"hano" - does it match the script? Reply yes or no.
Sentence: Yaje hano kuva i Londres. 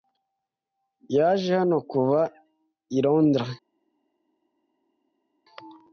yes